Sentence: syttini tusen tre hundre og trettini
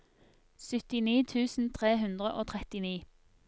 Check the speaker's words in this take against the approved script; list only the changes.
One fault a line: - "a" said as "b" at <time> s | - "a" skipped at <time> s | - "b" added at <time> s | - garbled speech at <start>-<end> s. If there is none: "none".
none